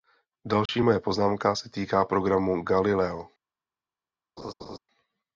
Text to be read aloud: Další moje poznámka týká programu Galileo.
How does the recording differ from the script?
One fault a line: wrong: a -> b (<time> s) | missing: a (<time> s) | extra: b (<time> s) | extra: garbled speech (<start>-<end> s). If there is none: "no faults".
extra: se (1.5 s)